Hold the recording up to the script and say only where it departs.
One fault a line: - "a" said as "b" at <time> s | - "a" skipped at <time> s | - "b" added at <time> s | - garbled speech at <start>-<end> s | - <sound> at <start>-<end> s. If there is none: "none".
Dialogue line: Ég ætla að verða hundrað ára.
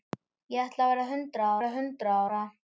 - "verða hundrað" added at 1.6 s